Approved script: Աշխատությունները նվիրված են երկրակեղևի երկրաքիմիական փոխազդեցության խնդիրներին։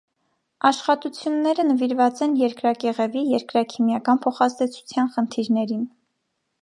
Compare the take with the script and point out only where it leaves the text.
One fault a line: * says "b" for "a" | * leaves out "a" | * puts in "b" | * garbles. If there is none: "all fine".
all fine